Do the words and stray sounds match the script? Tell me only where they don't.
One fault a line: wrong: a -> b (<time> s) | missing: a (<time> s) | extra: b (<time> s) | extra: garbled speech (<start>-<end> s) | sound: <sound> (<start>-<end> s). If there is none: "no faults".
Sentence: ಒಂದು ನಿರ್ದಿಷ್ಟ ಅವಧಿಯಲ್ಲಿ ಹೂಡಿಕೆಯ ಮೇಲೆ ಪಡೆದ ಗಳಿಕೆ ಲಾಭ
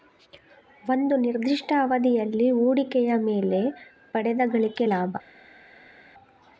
no faults